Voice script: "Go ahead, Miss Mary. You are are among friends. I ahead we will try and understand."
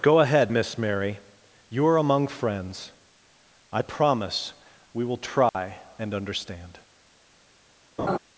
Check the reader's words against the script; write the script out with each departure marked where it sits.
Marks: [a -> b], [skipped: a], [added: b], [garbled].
"Go ahead, Miss Mary. You are [skipped: are] among friends. I [ahead -> promise] we will try and understand."